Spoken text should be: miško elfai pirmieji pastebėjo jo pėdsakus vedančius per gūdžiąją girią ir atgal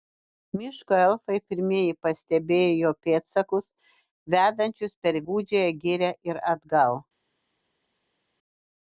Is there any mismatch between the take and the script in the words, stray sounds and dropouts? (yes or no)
no